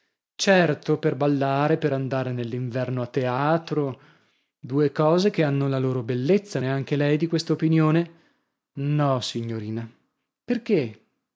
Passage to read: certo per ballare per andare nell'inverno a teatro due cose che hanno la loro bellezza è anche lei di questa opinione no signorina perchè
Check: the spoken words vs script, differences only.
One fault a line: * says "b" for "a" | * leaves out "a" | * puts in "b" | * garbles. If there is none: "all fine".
all fine